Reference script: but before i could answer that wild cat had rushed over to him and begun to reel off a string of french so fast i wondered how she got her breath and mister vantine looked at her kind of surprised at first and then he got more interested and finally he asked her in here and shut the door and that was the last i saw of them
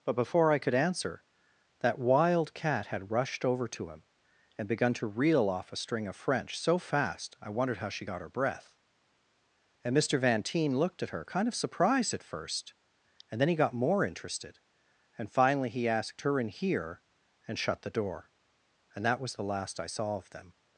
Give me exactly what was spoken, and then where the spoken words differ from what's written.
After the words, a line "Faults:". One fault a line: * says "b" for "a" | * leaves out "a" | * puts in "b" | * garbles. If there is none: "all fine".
but before i could answer that wild cat had rushed over to him and begun to reel off a string of french so fast i wondered how she got her breath and mister vantine looked at her kind of surprised at first and then he got more interested and finally he asked her in here and shut the door and that was the last i saw of them
Faults:
all fine